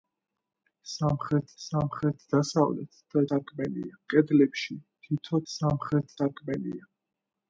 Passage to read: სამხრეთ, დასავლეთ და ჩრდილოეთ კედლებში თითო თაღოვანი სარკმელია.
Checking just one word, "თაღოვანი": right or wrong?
wrong